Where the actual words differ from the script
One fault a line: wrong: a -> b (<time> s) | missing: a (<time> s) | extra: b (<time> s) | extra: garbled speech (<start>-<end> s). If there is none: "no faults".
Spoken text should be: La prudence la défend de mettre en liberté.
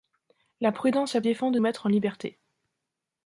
no faults